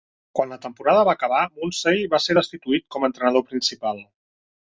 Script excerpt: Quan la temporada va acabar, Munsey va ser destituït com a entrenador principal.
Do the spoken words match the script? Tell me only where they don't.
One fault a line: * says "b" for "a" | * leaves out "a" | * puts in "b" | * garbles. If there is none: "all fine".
all fine